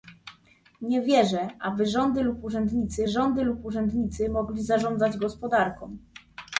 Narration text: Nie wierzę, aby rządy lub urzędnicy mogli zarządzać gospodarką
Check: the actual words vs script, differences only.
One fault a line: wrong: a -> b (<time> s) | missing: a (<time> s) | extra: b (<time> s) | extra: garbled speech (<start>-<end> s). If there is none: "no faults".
extra: rządy lub urzędnicy (3.1 s)